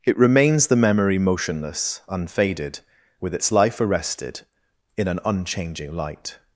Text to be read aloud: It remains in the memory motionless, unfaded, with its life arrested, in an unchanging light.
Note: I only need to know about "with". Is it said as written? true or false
true